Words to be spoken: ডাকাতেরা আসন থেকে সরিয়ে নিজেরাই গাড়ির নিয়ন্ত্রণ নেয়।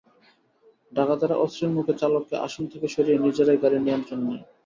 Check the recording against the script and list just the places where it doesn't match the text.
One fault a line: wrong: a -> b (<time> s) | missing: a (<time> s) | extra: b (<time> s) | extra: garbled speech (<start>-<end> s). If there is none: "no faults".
extra: অস্ত্রের মুখে চালককে (1.4 s)